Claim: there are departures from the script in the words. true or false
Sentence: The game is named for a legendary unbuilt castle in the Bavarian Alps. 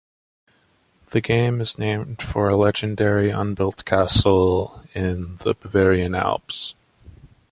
false